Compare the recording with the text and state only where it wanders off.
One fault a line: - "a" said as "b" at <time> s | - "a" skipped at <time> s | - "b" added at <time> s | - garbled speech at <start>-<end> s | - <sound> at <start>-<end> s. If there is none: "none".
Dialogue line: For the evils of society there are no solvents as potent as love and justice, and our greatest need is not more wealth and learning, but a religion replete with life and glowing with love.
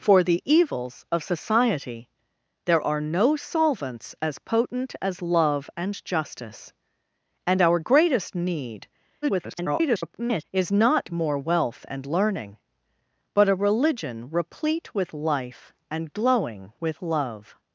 - garbled speech at 9.2-10.4 s